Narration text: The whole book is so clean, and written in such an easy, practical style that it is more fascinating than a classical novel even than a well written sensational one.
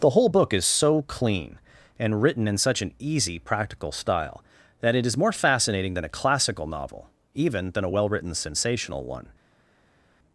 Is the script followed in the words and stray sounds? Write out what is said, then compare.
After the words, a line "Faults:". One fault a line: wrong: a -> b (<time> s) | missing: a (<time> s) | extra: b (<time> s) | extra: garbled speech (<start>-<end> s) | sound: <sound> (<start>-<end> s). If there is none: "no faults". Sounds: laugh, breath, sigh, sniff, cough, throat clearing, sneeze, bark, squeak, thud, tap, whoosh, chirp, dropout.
The whole book is so clean, and written in such an easy, practical style that it is more fascinating than a classical novel even than a well written sensational one.
Faults:
no faults